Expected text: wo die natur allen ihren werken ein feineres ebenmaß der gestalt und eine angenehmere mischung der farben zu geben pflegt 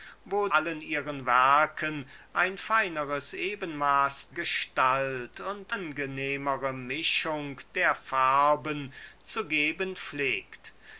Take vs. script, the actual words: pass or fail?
fail